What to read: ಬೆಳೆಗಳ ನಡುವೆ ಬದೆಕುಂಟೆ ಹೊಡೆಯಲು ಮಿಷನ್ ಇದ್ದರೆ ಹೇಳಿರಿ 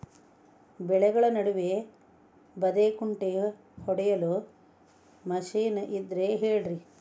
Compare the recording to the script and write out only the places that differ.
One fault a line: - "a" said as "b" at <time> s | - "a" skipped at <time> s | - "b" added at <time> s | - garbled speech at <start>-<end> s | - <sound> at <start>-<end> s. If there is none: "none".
none